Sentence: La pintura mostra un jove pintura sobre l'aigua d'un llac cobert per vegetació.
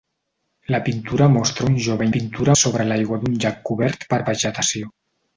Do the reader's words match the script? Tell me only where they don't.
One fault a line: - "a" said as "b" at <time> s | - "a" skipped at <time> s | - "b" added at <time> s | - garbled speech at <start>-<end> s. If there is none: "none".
none